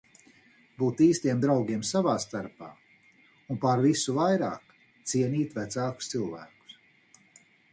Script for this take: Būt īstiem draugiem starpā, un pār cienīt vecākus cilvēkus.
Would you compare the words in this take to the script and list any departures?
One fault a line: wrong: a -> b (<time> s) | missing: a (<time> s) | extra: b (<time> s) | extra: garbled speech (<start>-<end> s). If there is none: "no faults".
extra: savā (1.9 s)
extra: visu vairāk (3.9 s)